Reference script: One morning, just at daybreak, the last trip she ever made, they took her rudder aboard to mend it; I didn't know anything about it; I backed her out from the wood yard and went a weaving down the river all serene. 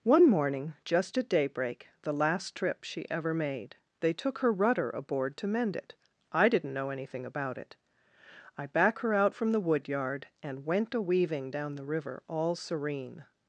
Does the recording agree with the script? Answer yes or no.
no